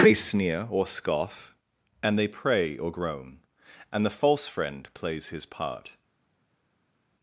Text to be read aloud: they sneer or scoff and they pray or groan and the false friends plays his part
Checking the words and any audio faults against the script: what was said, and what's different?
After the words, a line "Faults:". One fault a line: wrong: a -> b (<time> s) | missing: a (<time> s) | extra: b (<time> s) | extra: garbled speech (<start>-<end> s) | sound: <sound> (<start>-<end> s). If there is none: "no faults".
they sneer or scoff and they pray or groan and the false friend plays his part
Faults:
wrong: friends -> friend (4.5 s)